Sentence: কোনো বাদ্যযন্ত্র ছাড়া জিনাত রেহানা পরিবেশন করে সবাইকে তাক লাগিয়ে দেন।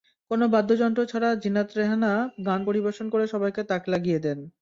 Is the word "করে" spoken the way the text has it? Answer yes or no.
yes